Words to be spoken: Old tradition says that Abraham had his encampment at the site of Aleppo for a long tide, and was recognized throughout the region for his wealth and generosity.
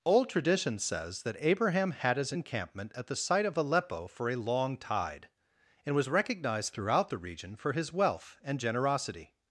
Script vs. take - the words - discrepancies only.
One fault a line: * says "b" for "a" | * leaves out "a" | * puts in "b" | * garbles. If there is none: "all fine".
all fine